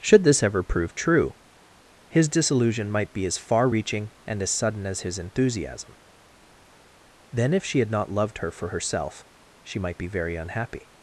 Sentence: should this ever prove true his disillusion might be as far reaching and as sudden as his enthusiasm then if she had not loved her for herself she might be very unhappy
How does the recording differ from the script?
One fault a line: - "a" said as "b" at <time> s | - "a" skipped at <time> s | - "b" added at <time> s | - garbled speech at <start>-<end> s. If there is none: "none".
none